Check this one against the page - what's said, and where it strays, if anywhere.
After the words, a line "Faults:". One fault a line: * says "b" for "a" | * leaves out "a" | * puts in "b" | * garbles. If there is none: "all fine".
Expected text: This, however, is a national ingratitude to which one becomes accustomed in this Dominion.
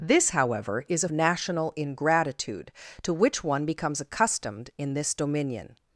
This, however, is a national ingratitude to which one becomes accustomed in this Dominion.
Faults:
all fine